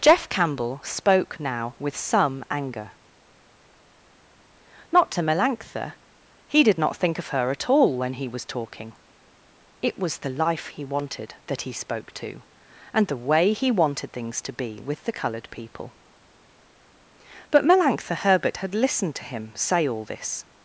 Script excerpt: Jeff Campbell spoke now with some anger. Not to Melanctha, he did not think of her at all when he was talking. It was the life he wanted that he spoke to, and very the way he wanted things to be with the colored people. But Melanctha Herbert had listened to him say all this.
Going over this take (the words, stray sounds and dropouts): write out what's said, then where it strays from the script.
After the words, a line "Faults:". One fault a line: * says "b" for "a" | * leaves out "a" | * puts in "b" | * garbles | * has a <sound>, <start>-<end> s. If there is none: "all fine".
Jeff Campbell spoke now with some anger. Not to Melanctha, he did not think of her at all when he was talking. It was the life he wanted that he spoke to, and the way he wanted things to be with the colored people. But Melanctha Herbert had listened to him say all this.
Faults:
* leaves out "very"